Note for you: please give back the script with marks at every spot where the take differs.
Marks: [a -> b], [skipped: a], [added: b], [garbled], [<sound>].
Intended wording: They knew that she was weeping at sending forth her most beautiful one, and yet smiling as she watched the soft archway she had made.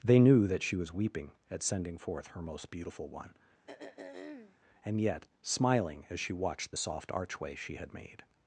They knew that she was weeping at sending forth her most beautiful one, [throat clearing] and yet smiling as she watched the soft archway she had made.